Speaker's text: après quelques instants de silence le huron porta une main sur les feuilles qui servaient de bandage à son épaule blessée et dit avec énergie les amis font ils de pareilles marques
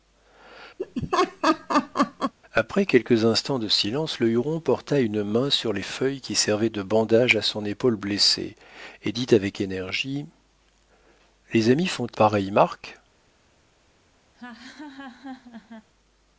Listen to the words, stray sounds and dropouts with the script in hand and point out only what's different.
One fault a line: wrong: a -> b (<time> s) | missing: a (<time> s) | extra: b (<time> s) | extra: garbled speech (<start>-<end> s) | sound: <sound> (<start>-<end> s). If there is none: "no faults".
sound: laugh (0.8-2.3 s)
missing: ils de (12.1 s)
sound: laugh (14.3-15.9 s)